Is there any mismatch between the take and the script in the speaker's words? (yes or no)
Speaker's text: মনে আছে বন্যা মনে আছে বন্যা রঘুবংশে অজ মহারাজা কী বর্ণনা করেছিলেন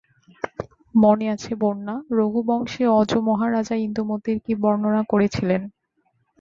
yes